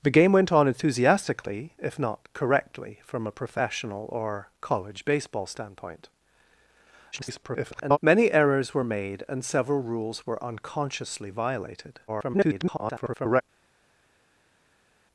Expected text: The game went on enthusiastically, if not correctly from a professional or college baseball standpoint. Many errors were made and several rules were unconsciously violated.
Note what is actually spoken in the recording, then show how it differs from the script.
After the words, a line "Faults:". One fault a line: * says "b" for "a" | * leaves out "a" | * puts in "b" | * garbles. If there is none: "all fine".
The game went on enthusiastically, if not correctly from a professional or college baseball standpoint. [garbled] Many errors were made and several rules were unconsciously violated. [garbled]
Faults:
* garbles
* garbles